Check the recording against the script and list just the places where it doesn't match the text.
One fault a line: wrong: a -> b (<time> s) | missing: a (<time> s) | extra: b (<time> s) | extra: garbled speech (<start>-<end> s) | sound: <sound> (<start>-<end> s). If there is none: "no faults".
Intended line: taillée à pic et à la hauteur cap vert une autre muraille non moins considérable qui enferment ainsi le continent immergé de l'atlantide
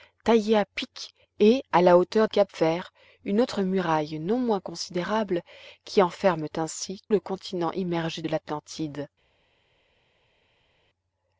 no faults